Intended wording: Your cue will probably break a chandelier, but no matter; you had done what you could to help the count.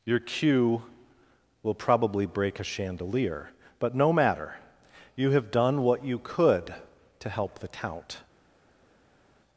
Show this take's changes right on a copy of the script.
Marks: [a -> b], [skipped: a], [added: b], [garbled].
Your cue will probably break a chandelier, but no matter; you [had -> have] done what you could to help the count.